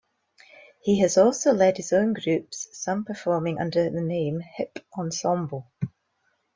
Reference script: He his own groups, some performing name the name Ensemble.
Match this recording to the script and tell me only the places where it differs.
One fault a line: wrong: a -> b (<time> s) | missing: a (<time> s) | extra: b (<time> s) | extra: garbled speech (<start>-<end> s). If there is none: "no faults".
extra: has also led (1.0 s)
wrong: name -> under (3.6 s)
extra: Hip (4.4 s)